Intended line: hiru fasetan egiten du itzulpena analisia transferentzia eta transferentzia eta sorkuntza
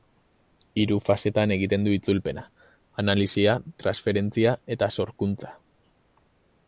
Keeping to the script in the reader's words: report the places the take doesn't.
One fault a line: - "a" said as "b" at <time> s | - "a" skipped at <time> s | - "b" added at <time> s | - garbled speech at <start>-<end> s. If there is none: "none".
- "transferentzia eta" skipped at 4.9 s